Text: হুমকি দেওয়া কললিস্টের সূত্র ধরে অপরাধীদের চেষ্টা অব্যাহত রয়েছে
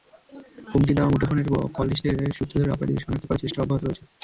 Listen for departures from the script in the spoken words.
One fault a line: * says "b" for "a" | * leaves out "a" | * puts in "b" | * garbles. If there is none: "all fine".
* puts in "মুঠোফোনের"
* puts in "শনাক্ত করার"